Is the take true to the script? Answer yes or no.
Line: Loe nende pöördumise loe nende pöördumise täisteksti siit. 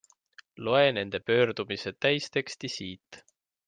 no